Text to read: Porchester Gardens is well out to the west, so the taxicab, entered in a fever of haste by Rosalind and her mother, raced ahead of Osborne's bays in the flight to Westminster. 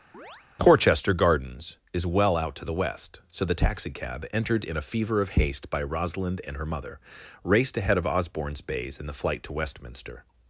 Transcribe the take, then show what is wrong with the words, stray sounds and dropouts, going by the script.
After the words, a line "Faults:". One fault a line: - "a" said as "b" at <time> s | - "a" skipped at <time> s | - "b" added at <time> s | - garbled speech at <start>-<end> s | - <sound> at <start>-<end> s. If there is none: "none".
Porchester Gardens is well out to the west, so the taxicab, entered in a fever of haste by Rosalind and her mother, raced ahead of Osborne's bays in the flight to Westminster.
Faults:
- chirp at 0.1-0.5 s